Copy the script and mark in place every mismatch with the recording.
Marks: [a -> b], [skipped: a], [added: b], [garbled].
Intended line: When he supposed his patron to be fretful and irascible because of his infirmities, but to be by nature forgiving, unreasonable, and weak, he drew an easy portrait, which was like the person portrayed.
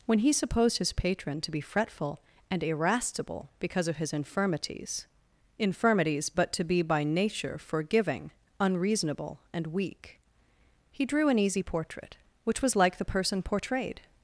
When he supposed his patron to be fretful and irascible because of his infirmities, [added: infirmities] but to be by nature forgiving, unreasonable, and weak, he drew an easy portrait, which was like the person portrayed.